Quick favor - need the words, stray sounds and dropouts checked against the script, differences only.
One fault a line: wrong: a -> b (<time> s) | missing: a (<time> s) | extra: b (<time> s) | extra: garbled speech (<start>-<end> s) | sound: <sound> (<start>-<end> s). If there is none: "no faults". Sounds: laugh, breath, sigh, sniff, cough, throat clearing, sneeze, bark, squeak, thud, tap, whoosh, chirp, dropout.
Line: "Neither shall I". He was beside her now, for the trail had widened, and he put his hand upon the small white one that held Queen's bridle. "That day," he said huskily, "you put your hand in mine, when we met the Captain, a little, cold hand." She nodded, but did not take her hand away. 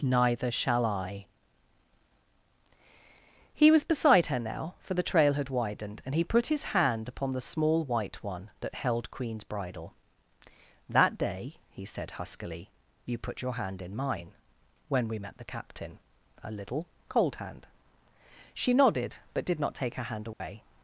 sound: dropout (20.3-20.4 s)